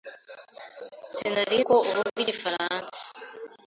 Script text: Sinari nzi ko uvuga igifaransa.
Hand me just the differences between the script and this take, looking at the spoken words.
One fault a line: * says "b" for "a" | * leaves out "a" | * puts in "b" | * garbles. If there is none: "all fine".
* leaves out "nzi"